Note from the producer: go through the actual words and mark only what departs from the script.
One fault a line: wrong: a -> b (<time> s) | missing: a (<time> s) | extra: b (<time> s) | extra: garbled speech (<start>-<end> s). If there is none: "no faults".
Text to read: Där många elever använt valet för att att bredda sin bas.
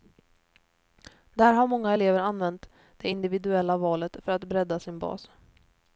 extra: har (1.5 s)
extra: det individuella (3.0 s)
missing: att (4.4 s)